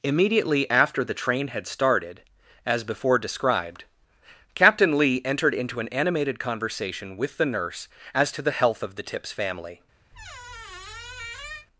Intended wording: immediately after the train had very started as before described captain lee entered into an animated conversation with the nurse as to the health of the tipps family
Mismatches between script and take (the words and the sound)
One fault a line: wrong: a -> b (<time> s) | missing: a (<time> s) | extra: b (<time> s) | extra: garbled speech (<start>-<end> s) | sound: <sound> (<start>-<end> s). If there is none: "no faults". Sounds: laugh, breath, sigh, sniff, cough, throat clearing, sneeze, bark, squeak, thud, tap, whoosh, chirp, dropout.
missing: very (1.7 s)
sound: squeak (10.1-11.7 s)